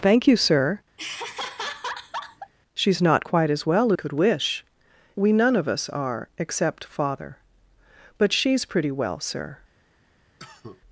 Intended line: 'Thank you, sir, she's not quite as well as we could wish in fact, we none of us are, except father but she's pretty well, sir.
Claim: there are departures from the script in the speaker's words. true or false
true